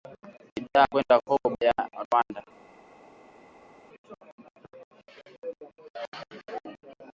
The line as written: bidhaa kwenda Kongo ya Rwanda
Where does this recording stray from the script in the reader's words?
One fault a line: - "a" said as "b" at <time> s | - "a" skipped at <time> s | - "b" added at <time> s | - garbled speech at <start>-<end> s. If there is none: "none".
none